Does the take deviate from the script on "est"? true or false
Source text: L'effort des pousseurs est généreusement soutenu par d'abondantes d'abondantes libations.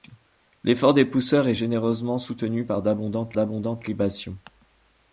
false